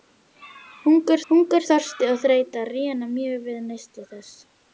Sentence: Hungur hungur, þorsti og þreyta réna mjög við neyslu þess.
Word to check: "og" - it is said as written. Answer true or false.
true